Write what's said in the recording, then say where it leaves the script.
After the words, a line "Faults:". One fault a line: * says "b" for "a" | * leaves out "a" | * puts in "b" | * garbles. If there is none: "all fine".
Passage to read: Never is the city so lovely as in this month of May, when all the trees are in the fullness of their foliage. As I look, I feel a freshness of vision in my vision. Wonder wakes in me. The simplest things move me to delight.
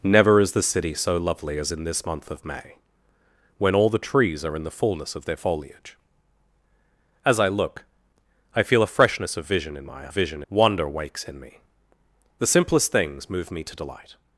Never is the city so lovely as in this month of May, when all the trees are in the fullness of their foliage. As I look, I feel a freshness of vision in my vision. Wonder wakes in me. The simplest things move me to delight.
Faults:
all fine